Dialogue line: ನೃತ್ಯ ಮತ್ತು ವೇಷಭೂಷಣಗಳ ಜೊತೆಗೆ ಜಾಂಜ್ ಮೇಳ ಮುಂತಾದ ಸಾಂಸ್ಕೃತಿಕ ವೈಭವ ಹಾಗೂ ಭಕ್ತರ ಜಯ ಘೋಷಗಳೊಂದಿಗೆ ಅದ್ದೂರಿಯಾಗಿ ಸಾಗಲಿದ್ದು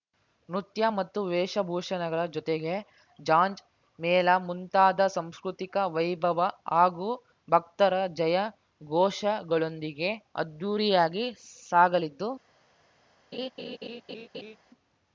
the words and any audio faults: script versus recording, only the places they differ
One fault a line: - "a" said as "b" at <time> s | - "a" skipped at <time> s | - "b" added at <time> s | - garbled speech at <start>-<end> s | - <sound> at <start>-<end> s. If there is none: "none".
- laugh at 13.3-14.6 s